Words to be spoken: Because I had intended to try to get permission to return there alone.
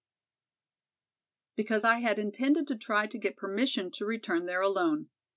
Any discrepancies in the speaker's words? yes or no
no